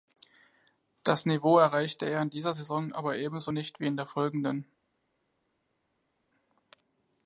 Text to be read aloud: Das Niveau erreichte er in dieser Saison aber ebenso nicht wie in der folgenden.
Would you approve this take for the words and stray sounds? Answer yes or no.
yes